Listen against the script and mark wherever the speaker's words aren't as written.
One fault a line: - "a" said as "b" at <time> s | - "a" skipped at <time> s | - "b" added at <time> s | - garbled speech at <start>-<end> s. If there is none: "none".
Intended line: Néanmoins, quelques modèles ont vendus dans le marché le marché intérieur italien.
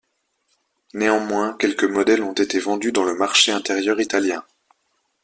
- "été" added at 2.3 s
- "le marché" skipped at 3.5 s